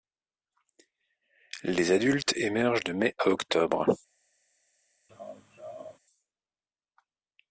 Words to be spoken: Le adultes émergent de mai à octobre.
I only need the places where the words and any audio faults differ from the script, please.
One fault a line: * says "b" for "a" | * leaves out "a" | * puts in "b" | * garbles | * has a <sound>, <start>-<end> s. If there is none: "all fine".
* says "Les" for "Le"
* has a laugh, 5.1-6.0 s